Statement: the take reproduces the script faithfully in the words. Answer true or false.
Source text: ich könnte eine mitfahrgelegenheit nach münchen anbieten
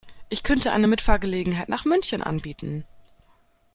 true